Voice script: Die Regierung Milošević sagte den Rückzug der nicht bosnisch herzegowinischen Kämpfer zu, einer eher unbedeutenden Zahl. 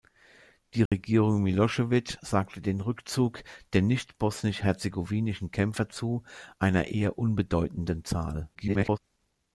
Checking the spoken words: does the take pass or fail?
fail